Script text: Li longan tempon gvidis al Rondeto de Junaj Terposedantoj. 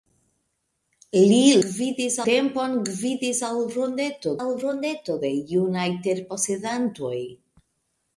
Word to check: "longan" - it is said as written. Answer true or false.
false